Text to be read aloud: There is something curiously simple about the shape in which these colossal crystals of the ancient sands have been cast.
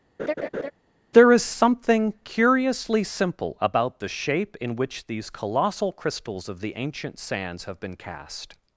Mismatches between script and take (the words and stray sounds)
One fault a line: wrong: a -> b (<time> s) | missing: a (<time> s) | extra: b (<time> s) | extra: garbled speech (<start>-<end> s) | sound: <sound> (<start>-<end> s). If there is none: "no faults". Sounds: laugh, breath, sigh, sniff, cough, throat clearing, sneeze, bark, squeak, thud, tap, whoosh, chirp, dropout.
sound: laugh (0.2-0.7 s)